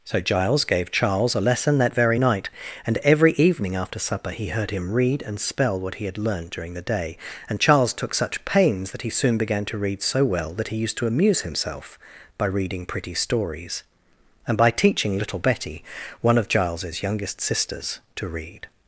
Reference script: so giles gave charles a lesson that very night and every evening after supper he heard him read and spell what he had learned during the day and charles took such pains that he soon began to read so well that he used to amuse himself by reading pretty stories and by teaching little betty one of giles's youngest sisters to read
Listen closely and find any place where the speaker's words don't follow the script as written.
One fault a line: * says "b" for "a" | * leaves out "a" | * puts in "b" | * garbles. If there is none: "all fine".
all fine